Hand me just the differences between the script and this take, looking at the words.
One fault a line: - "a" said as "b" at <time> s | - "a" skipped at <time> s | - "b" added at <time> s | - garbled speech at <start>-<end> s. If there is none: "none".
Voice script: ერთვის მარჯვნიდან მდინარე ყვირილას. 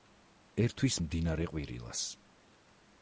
- "მარჯვნიდან" skipped at 0.9 s